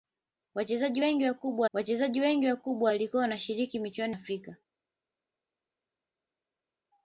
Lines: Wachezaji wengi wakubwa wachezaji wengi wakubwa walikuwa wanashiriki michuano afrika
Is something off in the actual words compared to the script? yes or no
no